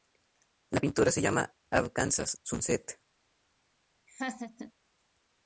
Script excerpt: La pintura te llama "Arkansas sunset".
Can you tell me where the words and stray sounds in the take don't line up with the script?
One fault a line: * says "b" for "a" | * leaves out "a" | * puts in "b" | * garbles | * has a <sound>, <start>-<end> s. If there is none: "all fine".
* says "se" for "te"
* has a laugh, 4.1-4.7 s